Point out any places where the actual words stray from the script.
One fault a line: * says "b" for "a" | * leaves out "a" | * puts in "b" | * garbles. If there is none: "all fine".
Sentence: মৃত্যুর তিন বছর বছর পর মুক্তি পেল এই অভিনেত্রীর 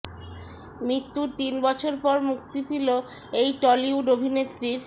* leaves out "বছর"
* puts in "টলিউড"